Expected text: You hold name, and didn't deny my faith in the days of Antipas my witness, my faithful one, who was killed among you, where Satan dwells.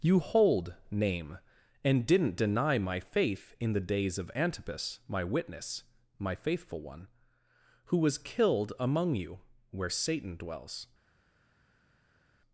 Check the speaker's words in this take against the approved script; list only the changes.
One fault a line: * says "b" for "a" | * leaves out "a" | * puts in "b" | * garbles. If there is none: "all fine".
all fine